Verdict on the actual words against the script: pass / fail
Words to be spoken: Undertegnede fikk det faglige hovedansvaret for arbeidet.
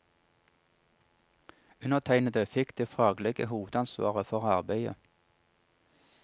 pass